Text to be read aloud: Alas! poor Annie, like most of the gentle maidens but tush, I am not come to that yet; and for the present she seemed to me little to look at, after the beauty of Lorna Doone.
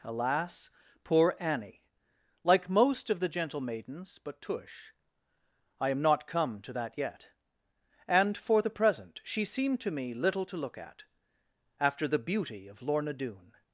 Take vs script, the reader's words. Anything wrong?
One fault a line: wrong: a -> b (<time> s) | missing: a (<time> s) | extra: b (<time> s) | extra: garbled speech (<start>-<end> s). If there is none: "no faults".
no faults